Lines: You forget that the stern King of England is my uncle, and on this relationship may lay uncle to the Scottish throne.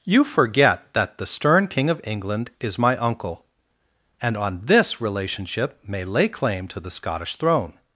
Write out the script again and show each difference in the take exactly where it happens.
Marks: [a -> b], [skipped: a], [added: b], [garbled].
You forget that the stern King of England is my uncle, and on this relationship may lay [uncle -> claim] to the Scottish throne.